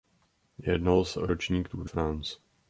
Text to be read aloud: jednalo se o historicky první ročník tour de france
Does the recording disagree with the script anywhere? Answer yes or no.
yes